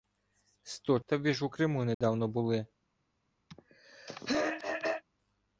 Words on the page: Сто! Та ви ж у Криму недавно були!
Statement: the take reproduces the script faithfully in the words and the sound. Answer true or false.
false